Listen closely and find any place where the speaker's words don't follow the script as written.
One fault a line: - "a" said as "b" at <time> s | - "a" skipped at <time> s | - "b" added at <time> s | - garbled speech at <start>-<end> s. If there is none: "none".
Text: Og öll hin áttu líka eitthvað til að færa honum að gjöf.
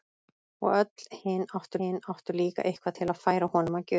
- "hin áttu" added at 1.8 s